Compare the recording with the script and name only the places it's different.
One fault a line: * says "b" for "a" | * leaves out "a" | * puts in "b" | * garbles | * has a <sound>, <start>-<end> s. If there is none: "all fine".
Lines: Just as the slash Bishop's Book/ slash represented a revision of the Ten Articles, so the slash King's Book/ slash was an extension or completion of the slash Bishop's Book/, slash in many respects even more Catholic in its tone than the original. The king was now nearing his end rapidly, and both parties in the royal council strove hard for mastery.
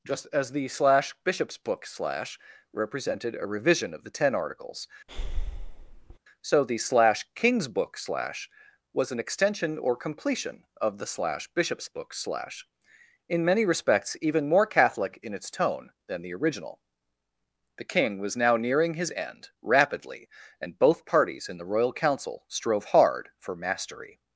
* has a breath, 5.1-6.2 s